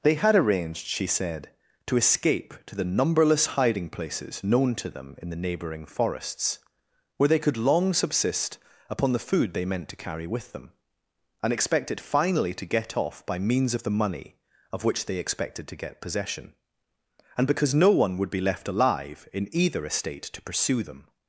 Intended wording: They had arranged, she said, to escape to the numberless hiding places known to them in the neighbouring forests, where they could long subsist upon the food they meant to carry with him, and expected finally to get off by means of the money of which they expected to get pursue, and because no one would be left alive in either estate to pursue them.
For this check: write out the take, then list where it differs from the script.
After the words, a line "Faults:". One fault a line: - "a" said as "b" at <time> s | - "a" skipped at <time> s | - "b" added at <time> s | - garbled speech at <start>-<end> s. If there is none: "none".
They had arranged, she said, to escape to the numberless hiding places known to them in the neighbouring forests, where they could long subsist upon the food they meant to carry with them, and expected finally to get off by means of the money of which they expected to get possession, and because no one would be left alive in either estate to pursue them.
Faults:
- "him" said as "them" at 10.5 s
- "pursue" said as "possession" at 16.0 s